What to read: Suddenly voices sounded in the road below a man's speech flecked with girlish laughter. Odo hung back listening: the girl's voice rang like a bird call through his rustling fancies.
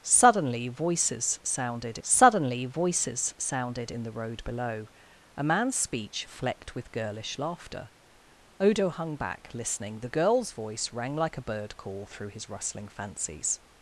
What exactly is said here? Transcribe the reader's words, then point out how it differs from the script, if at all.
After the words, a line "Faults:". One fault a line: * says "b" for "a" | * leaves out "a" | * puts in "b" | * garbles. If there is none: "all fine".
Suddenly voices sounded suddenly voices sounded in the road below a man's speech flecked with girlish laughter. Odo hung back listening: the girl's voice rang like a bird call through his rustling fancies.
Faults:
* puts in "suddenly voices sounded"